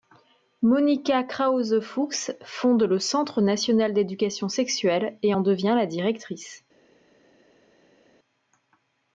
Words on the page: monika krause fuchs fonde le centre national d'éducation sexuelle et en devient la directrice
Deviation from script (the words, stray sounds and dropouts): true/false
false